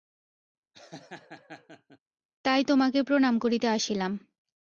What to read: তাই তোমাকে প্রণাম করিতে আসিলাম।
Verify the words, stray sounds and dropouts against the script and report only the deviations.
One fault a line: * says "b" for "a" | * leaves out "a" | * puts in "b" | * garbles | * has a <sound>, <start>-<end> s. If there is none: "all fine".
* has a laugh, 0.7-2.0 s